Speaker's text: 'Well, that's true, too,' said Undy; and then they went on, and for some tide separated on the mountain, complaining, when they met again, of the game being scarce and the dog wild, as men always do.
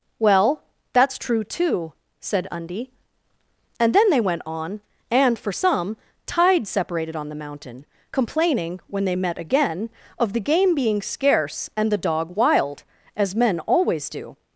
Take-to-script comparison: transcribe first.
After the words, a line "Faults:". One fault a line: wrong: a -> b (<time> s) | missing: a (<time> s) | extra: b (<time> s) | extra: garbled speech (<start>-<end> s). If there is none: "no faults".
'Well, that's true, too,' said Undy; and then they went on, and for some tide separated on the mountain, complaining, when they met again, of the game being scarce and the dog wild, as men always do.
Faults:
no faults